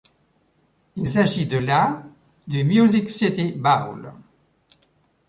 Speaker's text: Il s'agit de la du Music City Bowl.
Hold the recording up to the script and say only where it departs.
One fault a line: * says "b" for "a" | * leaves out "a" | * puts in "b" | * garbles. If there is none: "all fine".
all fine